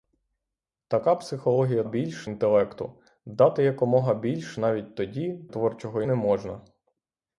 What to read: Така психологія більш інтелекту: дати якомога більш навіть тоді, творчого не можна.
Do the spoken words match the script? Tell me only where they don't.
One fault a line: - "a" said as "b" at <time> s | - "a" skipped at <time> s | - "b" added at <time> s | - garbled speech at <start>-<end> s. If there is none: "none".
none